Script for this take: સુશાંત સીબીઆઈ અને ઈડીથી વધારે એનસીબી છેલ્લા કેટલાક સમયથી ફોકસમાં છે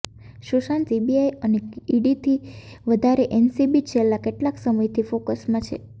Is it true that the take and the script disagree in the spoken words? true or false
false